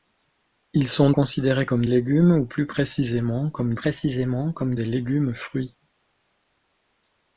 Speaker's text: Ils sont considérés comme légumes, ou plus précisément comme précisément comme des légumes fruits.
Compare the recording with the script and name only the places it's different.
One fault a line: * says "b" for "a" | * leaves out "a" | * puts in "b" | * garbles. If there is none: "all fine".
all fine